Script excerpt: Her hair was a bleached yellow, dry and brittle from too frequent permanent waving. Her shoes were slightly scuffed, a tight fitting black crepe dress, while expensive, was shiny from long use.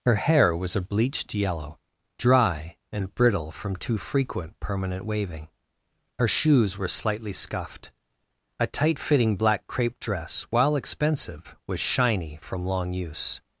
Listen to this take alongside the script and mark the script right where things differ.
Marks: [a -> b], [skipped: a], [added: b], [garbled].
Her hair was a bleached yellow, dry and brittle from too frequent permanent waving. Her shoes were slightly scuffed, a tight fitting black crepe dress, while expensive, was shiny from long use.